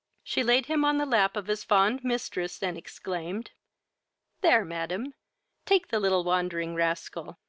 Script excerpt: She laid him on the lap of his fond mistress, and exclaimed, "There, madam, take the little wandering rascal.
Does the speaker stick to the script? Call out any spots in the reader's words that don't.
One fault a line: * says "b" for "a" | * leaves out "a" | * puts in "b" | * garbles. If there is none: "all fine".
all fine